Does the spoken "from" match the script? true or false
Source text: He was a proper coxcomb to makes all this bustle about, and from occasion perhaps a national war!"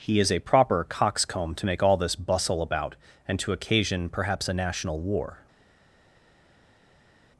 false